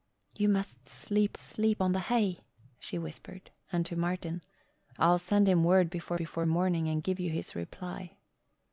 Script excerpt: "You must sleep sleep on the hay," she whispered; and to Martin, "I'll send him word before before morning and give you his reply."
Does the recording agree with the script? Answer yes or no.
yes